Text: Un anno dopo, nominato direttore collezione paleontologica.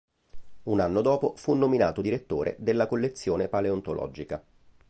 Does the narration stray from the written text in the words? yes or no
yes